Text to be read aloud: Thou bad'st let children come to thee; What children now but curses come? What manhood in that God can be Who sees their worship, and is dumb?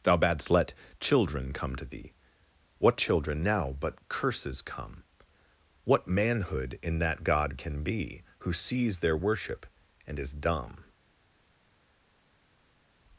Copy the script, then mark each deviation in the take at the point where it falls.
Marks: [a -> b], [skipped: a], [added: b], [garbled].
Thou bad'st let children come to thee; What children now but curses come? What manhood in that God can be Who sees their worship, and is dumb?